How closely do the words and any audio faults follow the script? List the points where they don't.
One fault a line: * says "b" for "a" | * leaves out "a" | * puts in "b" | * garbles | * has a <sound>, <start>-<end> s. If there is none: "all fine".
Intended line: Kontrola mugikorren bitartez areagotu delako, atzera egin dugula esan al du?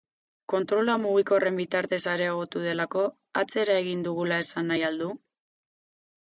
* puts in "nahi"